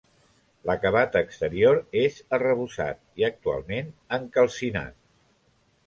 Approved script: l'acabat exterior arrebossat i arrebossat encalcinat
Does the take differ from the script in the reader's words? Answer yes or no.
yes